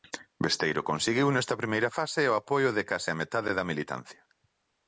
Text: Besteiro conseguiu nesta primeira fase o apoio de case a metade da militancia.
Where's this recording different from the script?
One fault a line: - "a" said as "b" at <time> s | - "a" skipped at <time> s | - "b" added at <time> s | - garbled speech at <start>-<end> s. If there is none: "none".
none